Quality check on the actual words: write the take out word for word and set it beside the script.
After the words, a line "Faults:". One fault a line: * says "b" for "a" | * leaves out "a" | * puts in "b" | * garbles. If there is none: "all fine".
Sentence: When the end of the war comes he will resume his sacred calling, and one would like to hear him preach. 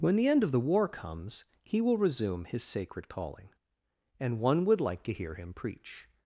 When the end of the war comes he will resume his sacred calling, and one would like to hear him preach.
Faults:
all fine